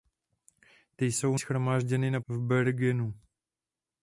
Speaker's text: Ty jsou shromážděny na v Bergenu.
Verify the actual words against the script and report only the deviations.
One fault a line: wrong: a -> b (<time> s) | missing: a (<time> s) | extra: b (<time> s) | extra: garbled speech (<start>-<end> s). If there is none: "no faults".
no faults